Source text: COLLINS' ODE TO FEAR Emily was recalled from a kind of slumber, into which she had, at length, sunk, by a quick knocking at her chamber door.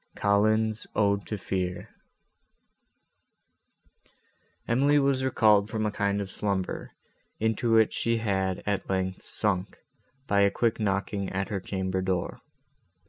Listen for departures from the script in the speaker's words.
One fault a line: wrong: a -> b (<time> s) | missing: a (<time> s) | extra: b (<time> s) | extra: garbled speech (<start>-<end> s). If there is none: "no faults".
no faults